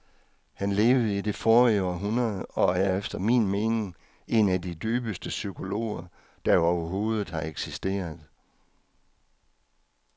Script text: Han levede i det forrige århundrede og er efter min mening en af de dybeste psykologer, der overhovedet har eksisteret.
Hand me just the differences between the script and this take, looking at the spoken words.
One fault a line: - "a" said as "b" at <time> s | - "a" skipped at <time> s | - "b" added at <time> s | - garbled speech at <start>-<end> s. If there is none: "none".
none